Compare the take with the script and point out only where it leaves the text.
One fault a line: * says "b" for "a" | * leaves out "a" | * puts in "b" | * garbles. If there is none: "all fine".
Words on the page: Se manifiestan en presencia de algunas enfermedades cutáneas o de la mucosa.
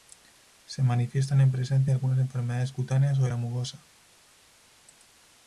all fine